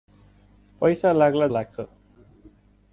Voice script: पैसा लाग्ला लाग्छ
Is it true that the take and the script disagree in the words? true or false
false